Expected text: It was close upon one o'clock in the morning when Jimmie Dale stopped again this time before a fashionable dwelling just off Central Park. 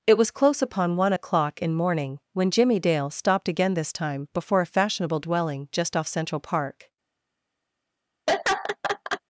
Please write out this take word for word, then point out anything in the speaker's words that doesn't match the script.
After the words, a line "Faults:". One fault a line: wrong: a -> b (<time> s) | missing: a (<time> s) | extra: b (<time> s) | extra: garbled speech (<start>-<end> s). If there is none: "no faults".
It was close upon one o'clock in morning when Jimmie Dale stopped again this time before a fashionable dwelling just off Central Park.
Faults:
missing: the (1.7 s)